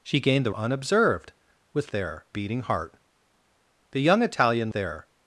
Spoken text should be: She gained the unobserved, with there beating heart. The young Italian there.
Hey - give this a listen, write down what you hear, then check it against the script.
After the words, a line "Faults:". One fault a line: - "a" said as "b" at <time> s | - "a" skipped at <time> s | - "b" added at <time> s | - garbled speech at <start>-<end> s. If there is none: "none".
She gained the unobserved, with there beating heart. The young Italian there.
Faults:
none